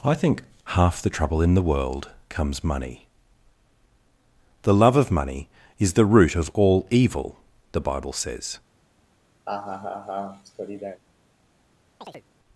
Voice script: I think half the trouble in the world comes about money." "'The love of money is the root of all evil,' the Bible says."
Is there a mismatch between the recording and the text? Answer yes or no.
yes